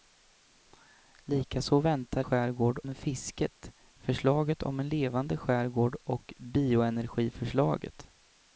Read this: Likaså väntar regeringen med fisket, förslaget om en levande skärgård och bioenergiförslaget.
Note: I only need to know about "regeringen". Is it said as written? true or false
false